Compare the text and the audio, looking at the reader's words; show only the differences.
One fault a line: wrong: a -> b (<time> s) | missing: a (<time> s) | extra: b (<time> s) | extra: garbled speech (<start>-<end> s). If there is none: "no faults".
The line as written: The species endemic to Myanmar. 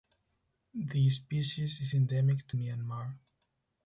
extra: is (1.8 s)